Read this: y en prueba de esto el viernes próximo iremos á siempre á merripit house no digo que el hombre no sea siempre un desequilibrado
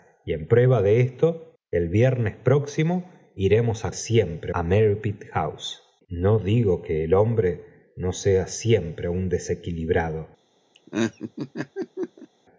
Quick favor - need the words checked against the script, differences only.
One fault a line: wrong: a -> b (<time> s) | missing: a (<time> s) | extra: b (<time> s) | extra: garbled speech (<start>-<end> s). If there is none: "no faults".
no faults